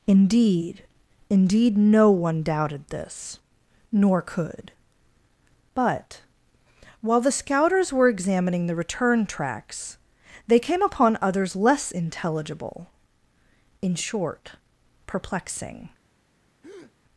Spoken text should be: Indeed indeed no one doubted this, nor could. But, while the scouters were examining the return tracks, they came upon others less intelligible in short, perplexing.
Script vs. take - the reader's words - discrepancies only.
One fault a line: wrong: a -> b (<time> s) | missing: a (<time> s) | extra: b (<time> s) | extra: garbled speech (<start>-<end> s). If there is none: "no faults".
no faults